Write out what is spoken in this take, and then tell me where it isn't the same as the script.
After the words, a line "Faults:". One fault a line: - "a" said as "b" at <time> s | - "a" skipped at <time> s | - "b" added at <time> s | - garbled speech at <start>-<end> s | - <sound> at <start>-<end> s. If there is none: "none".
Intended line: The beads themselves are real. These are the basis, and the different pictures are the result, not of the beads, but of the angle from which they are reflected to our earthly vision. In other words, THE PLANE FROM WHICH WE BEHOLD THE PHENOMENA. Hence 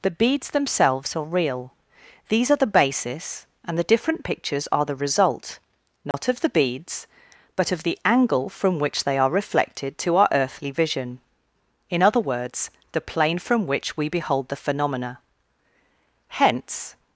The beads themselves are real. These are the basis, and the different pictures are the result, not of the beads, but of the angle from which they are reflected to our earthly vision. In other words, THE PLANE FROM WHICH WE BEHOLD THE PHENOMENA. Hence
Faults:
- dropout at 6.1-6.1 s